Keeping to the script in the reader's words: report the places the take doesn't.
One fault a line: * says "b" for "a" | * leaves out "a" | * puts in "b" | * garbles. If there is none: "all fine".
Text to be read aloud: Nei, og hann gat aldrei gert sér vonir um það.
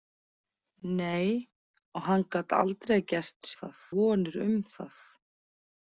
* says "það" for "sér"